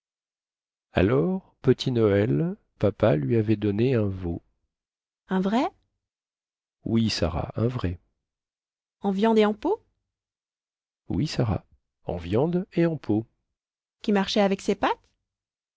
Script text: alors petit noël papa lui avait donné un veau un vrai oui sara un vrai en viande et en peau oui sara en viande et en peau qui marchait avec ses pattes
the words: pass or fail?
pass